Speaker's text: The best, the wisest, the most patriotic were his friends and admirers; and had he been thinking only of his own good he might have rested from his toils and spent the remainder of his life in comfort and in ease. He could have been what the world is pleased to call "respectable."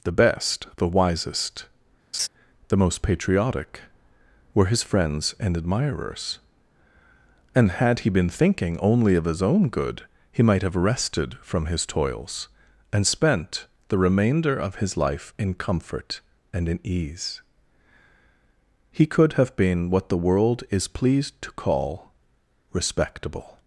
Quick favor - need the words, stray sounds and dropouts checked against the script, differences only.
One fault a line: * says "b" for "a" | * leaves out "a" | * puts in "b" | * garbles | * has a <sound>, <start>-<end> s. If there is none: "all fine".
* has a laugh, 2.1-2.3 s